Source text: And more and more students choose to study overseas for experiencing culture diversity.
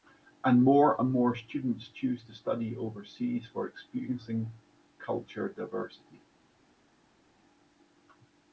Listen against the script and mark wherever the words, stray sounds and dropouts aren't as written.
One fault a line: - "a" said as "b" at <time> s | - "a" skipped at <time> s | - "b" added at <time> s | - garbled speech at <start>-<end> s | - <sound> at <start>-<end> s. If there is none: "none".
none